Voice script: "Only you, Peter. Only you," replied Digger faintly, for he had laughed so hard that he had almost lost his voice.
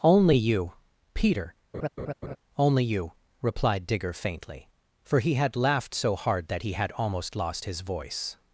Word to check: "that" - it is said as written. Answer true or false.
true